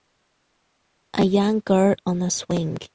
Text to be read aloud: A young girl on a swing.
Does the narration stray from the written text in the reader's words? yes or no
no